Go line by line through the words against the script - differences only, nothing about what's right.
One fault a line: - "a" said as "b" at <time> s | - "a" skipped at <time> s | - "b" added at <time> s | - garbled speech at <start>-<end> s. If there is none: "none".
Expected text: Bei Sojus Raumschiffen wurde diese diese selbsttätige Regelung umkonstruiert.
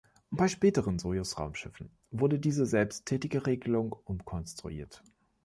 - "späteren" added at 0.5 s
- "diese" skipped at 2.7 s